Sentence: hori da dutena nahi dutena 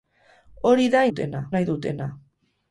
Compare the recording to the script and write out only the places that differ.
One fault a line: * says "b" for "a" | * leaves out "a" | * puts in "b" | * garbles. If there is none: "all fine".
all fine